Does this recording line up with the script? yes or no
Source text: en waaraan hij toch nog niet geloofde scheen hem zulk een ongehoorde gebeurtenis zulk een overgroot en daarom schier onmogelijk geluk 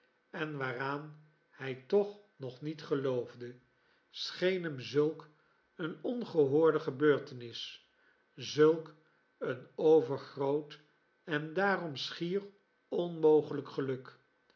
yes